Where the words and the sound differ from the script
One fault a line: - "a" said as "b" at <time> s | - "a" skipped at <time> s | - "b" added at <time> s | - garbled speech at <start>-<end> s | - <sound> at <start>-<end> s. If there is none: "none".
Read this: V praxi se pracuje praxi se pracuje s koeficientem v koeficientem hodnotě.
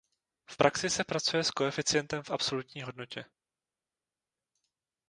- "praxi se pracuje" skipped at 1.4 s
- "koeficientem" said as "absolutní" at 2.3 s